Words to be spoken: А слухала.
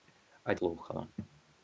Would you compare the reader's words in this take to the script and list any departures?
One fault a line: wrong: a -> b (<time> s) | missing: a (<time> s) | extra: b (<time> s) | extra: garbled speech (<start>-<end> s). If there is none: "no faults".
no faults